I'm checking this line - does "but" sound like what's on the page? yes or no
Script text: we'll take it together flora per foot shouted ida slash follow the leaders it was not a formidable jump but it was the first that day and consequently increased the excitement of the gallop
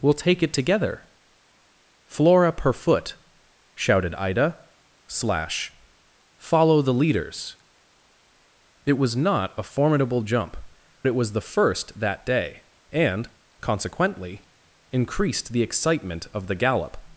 no